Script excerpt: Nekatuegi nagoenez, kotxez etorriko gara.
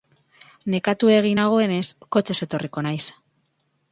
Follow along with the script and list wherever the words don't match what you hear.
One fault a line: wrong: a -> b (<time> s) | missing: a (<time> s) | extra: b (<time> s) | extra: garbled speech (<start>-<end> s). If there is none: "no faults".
wrong: gara -> naiz (2.9 s)